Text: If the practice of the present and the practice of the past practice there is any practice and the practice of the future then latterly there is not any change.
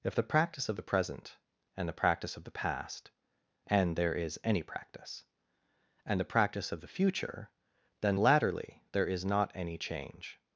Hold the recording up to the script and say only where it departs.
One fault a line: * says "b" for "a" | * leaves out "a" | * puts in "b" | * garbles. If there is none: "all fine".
* says "and" for "practice"